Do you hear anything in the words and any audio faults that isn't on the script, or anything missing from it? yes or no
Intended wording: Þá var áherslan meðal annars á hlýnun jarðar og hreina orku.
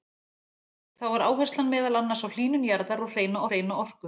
yes